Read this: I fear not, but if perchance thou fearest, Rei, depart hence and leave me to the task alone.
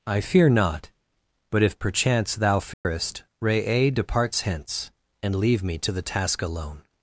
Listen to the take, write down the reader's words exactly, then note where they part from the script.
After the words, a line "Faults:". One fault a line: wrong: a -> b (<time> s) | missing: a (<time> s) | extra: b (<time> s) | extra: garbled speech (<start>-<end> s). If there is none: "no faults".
I fear not, but if perchance thou fearest, Rei, departs hence and leave me to the task alone.
Faults:
wrong: depart -> departs (3.9 s)